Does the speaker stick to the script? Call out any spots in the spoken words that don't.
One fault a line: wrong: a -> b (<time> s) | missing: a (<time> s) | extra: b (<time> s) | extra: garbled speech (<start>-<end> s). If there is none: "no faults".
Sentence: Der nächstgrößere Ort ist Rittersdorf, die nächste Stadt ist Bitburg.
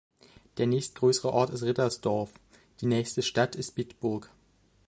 no faults